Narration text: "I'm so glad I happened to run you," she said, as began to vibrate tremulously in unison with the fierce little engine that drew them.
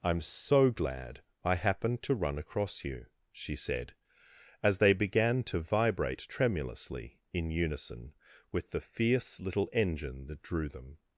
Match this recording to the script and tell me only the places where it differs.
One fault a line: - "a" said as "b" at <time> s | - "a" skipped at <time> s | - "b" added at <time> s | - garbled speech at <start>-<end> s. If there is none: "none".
- "across" added at 2.4 s
- "they" added at 4.8 s